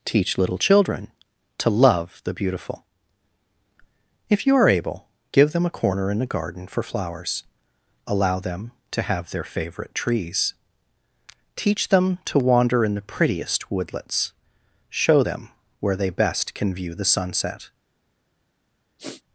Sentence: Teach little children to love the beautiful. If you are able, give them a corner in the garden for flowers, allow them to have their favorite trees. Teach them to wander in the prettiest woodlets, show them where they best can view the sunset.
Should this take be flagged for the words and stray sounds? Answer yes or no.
yes